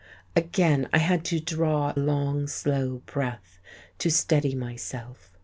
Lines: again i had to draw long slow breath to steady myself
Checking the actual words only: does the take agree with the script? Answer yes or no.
yes